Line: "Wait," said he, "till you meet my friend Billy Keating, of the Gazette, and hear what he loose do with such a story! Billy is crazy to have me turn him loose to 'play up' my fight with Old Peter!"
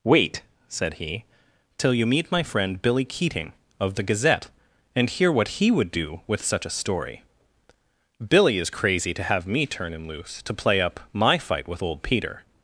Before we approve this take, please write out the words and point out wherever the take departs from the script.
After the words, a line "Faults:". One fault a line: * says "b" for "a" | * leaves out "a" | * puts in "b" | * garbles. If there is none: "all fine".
"Wait," said he, "till you meet my friend Billy Keating, of the Gazette, and hear what he would do with such a story! Billy is crazy to have me turn him loose to 'play up' my fight with Old Peter!"
Faults:
* says "would" for "loose"